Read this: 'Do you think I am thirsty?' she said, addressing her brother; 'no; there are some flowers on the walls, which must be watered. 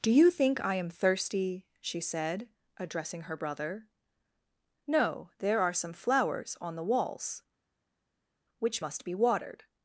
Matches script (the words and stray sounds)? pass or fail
pass